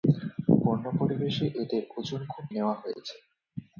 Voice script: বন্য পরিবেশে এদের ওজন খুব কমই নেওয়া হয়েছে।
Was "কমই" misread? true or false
true